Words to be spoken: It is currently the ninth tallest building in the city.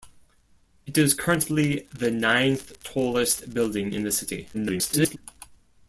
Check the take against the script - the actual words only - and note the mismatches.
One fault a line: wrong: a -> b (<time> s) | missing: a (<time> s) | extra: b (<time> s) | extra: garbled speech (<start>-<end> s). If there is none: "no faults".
extra: garbled speech (4.5-5.2 s)